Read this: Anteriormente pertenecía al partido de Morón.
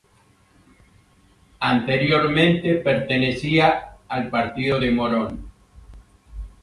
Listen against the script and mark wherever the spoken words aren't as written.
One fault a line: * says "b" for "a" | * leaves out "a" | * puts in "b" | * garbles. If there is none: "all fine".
all fine